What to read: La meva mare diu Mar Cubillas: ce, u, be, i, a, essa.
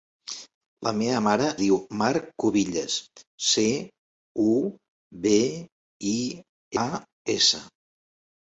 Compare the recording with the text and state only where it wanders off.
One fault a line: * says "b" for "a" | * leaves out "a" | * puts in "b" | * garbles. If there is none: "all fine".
all fine